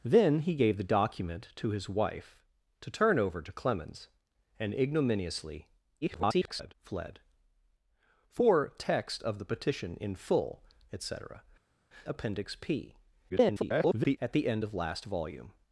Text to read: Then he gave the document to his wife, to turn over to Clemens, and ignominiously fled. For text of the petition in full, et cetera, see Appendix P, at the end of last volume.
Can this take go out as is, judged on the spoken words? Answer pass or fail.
fail